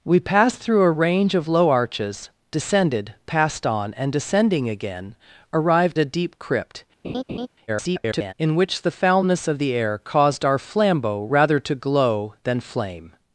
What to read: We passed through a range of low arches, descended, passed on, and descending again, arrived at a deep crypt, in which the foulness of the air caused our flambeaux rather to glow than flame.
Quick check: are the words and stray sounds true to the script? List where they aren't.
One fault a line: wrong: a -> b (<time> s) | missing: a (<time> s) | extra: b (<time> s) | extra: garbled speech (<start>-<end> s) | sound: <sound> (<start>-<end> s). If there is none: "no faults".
missing: at (6.0 s)
sound: laugh (7.0-7.5 s)
extra: garbled speech (7.7-8.3 s)